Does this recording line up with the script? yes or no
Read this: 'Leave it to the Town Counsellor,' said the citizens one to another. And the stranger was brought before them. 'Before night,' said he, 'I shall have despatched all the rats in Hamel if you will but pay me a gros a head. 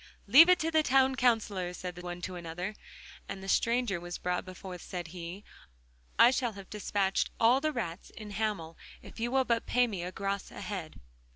no